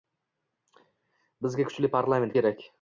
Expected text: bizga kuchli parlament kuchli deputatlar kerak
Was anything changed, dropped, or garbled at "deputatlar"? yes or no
yes